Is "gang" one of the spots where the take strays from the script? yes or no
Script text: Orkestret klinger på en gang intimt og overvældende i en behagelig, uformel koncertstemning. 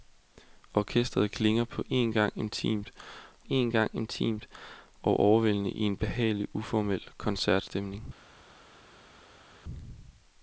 no